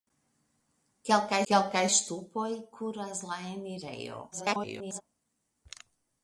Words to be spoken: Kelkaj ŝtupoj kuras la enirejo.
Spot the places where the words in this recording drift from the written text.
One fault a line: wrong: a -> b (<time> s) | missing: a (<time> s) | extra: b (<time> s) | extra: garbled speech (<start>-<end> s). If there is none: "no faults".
extra: kelkaj (1.5 s)
extra: garbled speech (4.3-5.0 s)